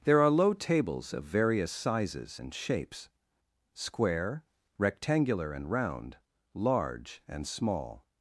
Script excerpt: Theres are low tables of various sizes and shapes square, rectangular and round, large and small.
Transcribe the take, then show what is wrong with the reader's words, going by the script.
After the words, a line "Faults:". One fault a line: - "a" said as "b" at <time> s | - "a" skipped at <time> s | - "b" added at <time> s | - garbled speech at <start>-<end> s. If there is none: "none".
There are low tables of various sizes and shapes square, rectangular and round, large and small.
Faults:
- "Theres" said as "There" at 0.0 s